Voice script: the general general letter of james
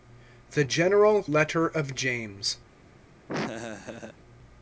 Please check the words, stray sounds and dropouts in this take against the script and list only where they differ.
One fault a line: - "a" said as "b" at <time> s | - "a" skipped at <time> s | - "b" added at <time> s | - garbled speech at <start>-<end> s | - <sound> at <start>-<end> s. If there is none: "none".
- "general" skipped at 1.2 s
- laugh at 3.3-4.2 s